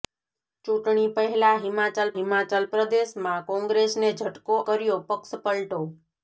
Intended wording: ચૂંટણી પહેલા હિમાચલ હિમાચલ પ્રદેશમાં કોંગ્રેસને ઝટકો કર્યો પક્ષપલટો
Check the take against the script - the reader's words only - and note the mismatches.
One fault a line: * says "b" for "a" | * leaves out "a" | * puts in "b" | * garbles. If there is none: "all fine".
all fine